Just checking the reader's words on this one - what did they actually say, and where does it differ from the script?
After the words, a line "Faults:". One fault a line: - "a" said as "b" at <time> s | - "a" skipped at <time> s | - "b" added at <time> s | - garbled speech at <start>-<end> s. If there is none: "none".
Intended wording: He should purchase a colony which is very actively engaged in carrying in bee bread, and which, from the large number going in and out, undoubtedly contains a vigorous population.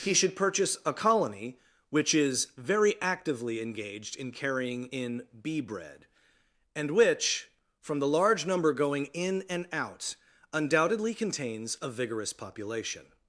He should purchase a colony which is very actively engaged in carrying in bee bread, and which, from the large number going in and out, undoubtedly contains a vigorous population.
Faults:
none